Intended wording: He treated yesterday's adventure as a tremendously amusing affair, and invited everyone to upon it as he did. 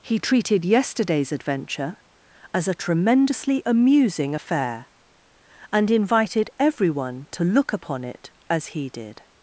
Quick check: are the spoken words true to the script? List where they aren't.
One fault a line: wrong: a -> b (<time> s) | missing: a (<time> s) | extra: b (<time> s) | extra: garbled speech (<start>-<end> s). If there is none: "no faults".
extra: look (7.4 s)